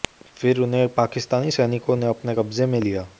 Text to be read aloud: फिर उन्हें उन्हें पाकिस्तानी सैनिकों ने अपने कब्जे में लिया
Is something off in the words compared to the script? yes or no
yes